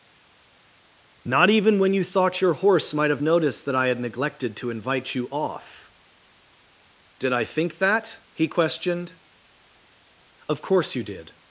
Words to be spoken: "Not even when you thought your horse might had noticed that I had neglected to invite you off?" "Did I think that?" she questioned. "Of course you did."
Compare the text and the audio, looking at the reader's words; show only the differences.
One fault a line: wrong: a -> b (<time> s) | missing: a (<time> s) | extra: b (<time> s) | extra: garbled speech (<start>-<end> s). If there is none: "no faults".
wrong: had -> have (3.1 s)
wrong: she -> he (8.3 s)